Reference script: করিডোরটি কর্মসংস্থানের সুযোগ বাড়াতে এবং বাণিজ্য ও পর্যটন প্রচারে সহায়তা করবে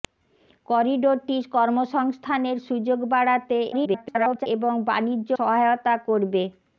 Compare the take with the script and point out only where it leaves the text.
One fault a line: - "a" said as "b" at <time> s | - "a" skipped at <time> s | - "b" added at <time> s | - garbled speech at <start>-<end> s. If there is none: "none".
- garbled speech at 3.7-4.5 s
- "ও পর্যটন প্রচারে" skipped at 5.3 s